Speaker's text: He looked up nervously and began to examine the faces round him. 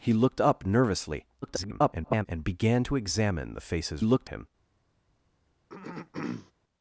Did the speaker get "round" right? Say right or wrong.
wrong